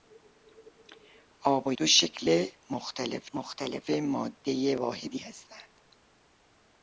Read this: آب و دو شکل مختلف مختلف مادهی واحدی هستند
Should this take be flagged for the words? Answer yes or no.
no